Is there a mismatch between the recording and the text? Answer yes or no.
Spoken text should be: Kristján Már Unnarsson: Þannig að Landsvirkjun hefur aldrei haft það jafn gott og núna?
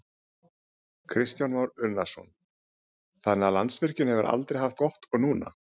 yes